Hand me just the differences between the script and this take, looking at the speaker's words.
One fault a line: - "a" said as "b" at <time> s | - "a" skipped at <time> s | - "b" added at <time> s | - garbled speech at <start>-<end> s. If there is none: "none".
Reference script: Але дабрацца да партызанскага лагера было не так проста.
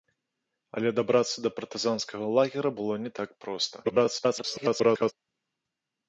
- garbled speech at 3.8-5.1 s